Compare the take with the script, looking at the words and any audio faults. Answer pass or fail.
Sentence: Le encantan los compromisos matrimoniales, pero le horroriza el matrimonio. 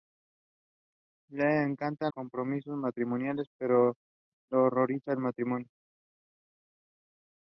fail